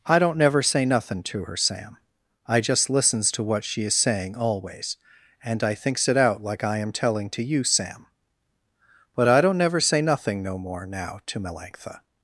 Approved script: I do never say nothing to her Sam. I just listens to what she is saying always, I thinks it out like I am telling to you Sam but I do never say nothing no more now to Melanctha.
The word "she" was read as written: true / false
true